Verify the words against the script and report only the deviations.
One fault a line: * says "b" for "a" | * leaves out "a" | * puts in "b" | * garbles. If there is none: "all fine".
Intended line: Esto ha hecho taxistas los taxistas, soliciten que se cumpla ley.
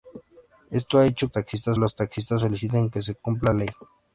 all fine